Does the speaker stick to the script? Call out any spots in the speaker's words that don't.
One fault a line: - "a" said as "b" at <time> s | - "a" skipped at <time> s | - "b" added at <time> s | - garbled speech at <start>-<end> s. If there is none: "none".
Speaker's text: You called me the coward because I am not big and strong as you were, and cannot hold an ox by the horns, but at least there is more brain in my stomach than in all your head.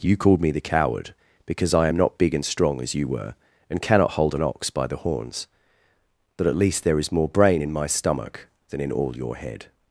none